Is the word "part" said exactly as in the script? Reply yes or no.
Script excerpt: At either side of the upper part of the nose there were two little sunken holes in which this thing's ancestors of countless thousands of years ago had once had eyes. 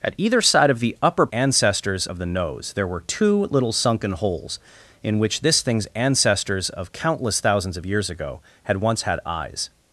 no